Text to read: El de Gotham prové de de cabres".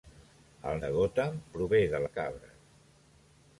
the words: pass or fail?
pass